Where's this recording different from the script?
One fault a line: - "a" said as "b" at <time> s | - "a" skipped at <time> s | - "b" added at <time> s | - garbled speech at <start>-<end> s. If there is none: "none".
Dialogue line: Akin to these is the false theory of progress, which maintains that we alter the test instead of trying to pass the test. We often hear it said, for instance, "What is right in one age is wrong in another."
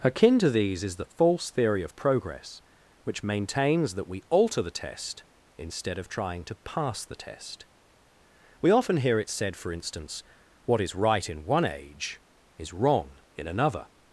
none